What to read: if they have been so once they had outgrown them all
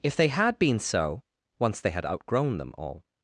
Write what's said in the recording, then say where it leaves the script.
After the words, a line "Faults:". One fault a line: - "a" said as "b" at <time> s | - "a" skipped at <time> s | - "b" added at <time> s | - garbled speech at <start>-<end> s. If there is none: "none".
if they had been so once they had outgrown them all
Faults:
- "have" said as "had" at 0.3 s